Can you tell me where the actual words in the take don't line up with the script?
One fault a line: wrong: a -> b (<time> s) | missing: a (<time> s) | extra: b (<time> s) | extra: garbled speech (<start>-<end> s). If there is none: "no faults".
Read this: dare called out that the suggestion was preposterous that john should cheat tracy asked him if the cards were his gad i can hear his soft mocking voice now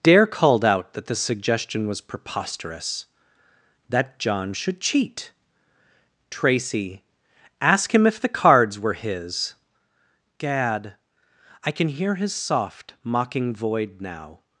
wrong: asked -> ask (7.6 s)
wrong: voice -> void (13.6 s)